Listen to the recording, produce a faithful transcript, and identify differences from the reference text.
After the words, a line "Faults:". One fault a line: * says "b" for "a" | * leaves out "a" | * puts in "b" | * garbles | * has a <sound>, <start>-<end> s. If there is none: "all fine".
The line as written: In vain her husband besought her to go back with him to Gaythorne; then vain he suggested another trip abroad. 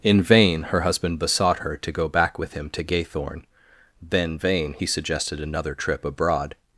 In vain her husband besought her to go back with him to Gaythorne; then vain he suggested another trip abroad.
Faults:
all fine